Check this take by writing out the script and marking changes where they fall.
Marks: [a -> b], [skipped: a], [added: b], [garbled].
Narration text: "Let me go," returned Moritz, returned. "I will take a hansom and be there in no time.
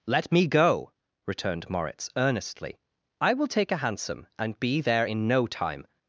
"Let me go," returned Moritz, [returned. -> earnestly] "I will take a hansom and be there in no time.